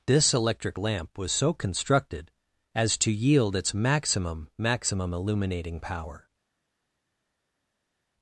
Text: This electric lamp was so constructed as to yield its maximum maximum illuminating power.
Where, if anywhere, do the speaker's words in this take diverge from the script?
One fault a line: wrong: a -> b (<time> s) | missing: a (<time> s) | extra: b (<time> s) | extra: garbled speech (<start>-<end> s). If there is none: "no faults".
no faults